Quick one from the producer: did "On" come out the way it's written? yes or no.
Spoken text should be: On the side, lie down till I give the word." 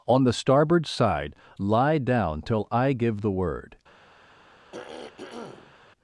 yes